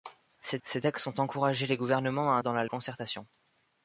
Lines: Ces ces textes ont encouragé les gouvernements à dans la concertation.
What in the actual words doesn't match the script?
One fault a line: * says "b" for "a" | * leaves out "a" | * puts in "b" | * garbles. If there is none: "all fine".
all fine